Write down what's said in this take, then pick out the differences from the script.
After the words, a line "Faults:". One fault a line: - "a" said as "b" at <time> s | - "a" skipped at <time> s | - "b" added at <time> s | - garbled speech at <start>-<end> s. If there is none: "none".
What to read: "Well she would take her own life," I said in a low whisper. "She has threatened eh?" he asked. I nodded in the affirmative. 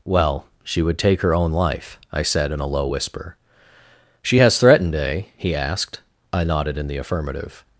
"Well she would take her own life," I said in a low whisper. "She has threatened eh?" he asked. I nodded in the affirmative.
Faults:
none